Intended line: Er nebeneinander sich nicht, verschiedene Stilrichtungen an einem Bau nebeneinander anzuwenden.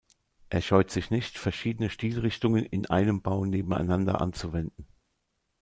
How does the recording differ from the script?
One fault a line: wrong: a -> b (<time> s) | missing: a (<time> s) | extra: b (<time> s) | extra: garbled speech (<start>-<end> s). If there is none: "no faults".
wrong: nebeneinander -> scheut (0.6 s)
wrong: an -> in (2.6 s)